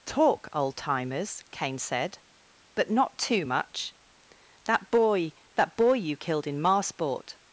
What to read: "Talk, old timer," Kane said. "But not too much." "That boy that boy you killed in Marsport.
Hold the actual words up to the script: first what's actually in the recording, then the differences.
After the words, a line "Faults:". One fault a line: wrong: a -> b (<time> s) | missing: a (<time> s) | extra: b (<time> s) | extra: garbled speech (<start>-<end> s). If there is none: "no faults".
"Talk, old timers," Kane said. "But not too much." "That boy that boy you killed in Marsport.
Faults:
wrong: timer -> timers (0.8 s)